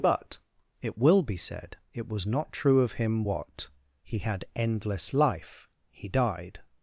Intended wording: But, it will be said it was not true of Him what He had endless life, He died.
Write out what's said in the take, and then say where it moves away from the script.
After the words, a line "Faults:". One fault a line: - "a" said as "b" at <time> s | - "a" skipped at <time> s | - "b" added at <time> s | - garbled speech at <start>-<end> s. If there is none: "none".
But, it will be said it was not true of Him what He had endless life, He died.
Faults:
none